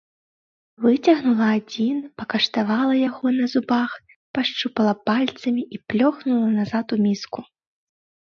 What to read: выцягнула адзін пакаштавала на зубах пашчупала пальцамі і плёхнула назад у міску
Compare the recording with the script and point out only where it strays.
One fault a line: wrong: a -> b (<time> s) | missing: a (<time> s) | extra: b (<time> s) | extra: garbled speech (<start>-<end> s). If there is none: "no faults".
extra: яго (3.1 s)